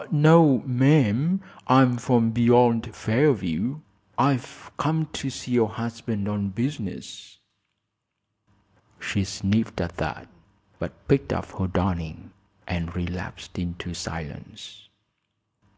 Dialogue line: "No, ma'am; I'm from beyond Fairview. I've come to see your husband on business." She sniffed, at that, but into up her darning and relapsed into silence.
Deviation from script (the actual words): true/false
true